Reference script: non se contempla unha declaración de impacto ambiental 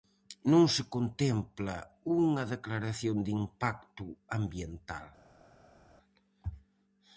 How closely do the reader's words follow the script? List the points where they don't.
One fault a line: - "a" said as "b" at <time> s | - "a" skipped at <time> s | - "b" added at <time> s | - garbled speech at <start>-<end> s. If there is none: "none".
none